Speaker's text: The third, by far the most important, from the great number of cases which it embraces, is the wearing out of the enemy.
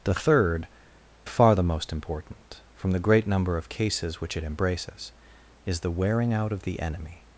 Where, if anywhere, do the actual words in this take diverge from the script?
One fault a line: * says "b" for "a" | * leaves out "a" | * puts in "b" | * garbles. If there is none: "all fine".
* leaves out "by"